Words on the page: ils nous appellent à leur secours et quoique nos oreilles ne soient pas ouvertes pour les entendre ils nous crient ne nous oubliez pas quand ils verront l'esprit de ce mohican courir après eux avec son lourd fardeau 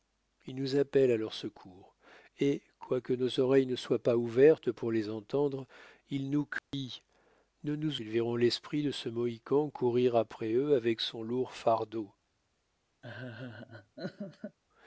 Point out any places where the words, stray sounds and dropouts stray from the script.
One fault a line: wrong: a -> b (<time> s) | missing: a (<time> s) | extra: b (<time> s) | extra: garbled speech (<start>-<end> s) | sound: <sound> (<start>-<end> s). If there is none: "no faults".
sound: dropout (6.6-6.7 s)
missing: oubliez pas quand (8.0 s)
sound: laugh (13.0-14.6 s)